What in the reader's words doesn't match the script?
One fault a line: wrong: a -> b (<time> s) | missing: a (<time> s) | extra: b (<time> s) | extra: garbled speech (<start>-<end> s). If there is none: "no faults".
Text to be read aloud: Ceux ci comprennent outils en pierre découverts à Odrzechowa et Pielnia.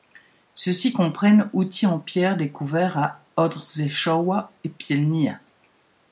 no faults